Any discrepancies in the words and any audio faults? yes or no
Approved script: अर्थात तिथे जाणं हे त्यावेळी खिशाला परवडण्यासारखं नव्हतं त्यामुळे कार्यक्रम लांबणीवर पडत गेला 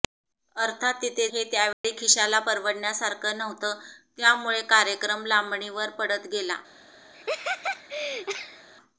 yes